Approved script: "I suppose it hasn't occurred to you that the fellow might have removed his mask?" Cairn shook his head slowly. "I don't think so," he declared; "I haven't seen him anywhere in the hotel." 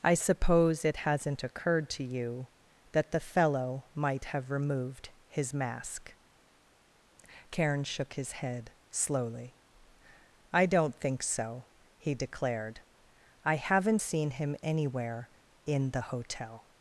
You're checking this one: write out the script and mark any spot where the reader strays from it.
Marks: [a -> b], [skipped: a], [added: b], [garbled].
"I suppose it hasn't occurred to you that the fellow might have removed his mask?" Cairn shook his head slowly. "I don't think so," he declared; "I haven't seen him anywhere in the hotel."